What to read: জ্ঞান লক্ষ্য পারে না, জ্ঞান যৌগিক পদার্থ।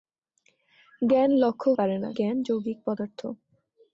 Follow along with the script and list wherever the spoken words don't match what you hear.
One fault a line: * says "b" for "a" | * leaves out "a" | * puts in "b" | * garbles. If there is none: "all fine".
all fine